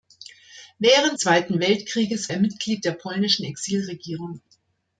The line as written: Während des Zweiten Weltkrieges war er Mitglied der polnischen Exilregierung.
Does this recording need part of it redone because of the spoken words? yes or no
yes